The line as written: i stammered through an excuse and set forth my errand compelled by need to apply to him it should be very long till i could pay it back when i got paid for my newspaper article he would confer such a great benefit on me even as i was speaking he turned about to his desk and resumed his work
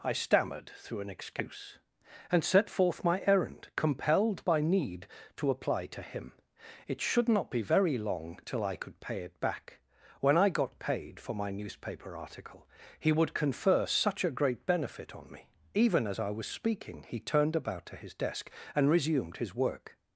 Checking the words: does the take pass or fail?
fail